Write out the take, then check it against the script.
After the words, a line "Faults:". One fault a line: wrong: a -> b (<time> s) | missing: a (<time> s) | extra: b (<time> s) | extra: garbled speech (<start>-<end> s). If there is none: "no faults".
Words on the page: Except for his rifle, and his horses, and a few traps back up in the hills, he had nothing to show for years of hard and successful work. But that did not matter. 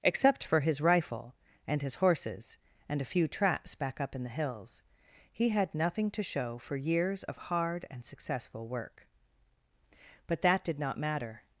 Except for his rifle, and his horses, and a few traps back up in the hills, he had nothing to show for years of hard and successful work. But that did not matter.
Faults:
no faults